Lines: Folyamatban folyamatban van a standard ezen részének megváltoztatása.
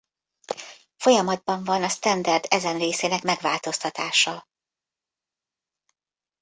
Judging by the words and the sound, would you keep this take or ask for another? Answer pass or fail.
fail